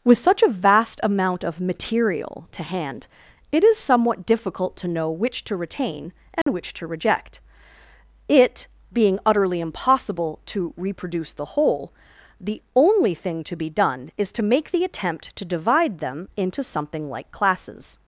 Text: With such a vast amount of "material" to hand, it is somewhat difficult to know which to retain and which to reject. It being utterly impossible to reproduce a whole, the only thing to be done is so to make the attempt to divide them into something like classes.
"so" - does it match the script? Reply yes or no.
no